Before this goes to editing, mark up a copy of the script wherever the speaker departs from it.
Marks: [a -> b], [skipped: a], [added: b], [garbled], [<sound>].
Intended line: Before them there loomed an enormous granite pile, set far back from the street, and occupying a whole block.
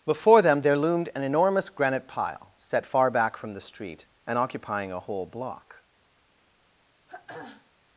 Before them there loomed an enormous granite pile, set far back from the street, and occupying a whole block. [throat clearing]